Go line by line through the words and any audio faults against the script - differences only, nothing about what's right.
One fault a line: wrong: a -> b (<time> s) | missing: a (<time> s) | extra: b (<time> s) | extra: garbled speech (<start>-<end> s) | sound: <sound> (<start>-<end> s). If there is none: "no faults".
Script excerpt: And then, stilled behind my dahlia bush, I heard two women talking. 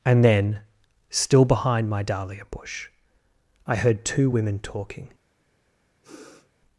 wrong: stilled -> still (1.1 s)
sound: sniff (6.0-6.5 s)